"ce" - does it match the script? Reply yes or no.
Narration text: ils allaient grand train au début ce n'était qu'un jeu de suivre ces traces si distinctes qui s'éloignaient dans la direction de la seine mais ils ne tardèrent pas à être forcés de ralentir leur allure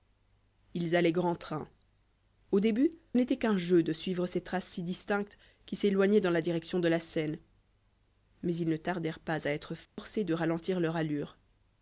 no